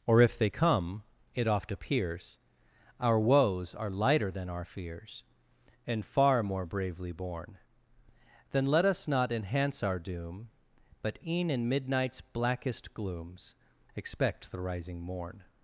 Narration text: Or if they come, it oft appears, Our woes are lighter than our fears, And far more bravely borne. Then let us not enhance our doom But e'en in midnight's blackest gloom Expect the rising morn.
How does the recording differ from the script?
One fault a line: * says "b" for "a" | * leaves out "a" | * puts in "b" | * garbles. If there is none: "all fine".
* says "glooms" for "gloom"